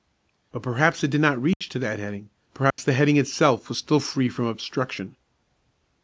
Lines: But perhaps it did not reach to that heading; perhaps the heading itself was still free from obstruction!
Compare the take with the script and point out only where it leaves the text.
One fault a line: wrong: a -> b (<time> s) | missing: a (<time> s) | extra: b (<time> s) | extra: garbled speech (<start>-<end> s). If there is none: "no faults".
no faults